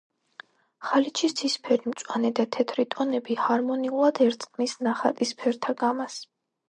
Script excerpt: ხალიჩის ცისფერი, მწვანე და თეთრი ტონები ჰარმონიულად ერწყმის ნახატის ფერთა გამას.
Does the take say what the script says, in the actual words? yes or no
yes